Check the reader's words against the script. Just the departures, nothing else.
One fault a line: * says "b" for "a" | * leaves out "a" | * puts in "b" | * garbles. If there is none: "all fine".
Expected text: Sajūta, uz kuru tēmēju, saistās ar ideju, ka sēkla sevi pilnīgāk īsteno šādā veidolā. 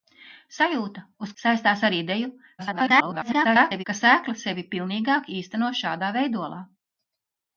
* leaves out "kuru tēmēju"
* garbles